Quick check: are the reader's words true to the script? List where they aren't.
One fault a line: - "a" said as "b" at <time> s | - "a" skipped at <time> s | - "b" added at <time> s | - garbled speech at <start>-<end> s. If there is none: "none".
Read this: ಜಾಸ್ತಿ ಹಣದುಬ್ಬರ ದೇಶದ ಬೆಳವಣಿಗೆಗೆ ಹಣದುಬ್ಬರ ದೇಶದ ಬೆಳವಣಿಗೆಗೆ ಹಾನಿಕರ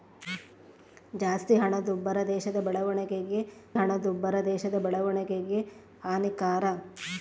none